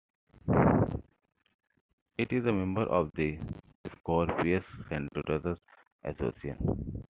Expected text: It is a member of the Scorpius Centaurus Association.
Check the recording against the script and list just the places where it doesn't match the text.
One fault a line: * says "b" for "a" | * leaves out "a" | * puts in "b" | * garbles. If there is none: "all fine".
all fine